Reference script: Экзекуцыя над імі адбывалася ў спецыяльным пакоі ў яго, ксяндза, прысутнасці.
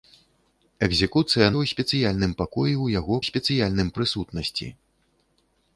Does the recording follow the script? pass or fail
fail